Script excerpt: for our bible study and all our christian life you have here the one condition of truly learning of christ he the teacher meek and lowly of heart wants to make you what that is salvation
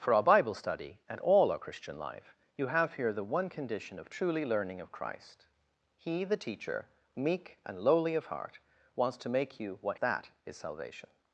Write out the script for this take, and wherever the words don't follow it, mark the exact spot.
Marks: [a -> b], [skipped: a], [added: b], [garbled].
for our bible study and all our christian life you have here the one condition of truly learning of christ he the teacher meek and lowly of heart wants to make you what that is salvation